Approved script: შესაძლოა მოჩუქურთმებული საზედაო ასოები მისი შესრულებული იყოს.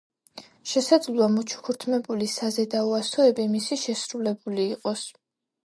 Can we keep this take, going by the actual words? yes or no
yes